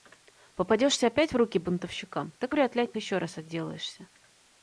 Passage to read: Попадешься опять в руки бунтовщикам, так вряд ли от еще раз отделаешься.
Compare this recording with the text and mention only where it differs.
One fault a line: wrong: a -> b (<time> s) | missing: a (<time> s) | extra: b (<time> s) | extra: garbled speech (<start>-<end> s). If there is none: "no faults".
no faults